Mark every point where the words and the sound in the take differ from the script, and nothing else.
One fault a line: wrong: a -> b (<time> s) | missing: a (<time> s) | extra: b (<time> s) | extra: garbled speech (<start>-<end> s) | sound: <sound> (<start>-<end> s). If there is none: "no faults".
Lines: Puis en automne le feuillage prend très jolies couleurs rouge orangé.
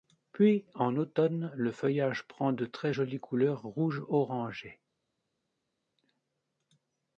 extra: de (2.5 s)